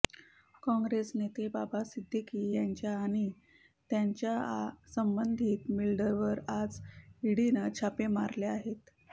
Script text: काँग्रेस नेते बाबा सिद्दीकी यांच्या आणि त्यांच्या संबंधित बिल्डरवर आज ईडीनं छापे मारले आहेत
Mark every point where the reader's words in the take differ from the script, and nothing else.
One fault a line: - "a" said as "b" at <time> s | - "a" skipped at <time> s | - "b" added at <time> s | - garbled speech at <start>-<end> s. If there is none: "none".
none